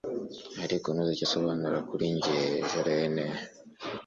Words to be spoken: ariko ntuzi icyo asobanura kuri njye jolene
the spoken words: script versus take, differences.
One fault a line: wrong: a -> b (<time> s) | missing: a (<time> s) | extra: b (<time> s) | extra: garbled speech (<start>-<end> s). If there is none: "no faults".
no faults